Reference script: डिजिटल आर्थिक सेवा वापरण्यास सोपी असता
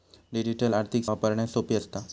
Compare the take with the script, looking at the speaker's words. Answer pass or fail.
fail